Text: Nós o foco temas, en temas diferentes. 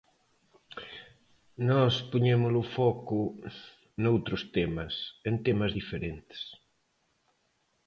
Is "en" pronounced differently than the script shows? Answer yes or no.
no